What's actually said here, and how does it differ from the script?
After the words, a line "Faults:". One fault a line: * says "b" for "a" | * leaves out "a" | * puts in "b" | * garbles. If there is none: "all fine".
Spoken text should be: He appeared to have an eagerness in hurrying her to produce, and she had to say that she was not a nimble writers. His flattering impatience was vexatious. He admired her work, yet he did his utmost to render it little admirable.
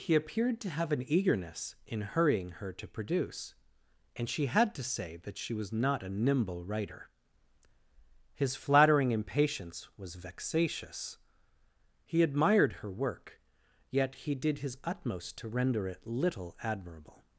He appeared to have an eagerness in hurrying her to produce, and she had to say that she was not a nimble writer. His flattering impatience was vexatious. He admired her work, yet he did his utmost to render it little admirable.
Faults:
* says "writer" for "writers"